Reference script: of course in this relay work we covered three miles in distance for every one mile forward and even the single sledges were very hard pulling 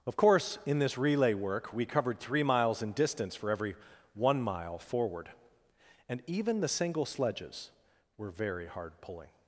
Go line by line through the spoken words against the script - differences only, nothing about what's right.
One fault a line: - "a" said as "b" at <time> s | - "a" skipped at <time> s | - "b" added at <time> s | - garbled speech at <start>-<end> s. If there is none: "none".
none